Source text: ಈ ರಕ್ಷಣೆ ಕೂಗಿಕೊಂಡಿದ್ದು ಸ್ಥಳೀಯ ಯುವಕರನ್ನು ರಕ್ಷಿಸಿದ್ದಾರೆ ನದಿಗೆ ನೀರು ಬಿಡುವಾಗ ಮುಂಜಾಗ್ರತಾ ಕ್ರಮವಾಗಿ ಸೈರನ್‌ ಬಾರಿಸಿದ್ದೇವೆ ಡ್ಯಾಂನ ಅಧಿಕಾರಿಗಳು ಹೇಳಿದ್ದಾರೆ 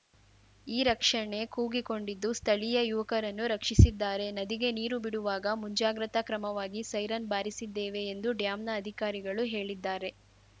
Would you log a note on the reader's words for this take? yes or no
yes